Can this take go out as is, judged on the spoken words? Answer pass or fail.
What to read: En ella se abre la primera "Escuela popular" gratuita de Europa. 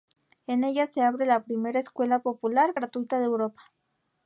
pass